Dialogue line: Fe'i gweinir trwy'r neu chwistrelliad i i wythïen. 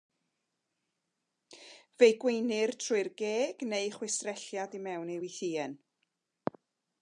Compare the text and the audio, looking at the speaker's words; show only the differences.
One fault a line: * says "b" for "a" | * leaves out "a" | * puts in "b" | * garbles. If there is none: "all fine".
* puts in "geg"
* puts in "mewn"